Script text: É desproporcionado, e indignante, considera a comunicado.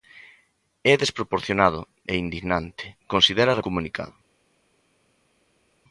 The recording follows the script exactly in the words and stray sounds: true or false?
true